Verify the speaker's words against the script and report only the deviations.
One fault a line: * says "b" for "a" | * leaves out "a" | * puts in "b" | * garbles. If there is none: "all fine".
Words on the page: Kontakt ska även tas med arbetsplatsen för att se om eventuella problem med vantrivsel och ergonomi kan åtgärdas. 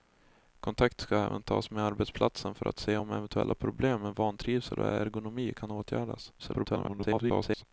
* garbles